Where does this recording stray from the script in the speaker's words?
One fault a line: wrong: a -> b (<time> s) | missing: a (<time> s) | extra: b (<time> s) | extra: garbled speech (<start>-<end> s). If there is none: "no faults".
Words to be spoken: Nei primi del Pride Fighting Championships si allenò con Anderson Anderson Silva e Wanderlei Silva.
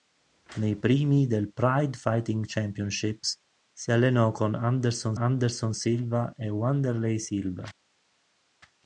no faults